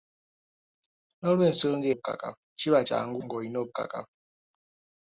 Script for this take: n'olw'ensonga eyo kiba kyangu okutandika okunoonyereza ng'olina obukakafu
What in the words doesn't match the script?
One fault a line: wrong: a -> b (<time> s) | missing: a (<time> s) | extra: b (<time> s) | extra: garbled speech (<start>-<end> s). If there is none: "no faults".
wrong: eyo -> obukakafu (1.9 s)
missing: okutandika okunoonyereza (3.2 s)